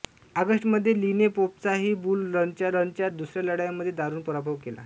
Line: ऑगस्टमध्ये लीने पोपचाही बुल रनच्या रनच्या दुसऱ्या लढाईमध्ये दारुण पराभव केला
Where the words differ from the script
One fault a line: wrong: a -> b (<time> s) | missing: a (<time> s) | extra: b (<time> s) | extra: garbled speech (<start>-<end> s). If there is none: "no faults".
no faults